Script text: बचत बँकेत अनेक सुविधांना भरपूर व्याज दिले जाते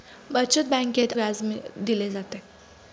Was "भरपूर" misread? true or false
true